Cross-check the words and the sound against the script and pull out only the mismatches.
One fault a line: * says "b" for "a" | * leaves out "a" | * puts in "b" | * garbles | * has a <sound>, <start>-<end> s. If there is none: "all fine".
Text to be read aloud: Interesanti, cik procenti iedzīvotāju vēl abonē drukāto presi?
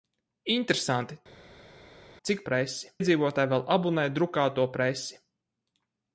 * says "presi" for "procenti"